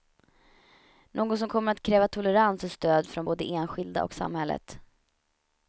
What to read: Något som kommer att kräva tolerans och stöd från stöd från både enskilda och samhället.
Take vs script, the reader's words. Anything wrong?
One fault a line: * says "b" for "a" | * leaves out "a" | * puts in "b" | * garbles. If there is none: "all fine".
* leaves out "stöd från"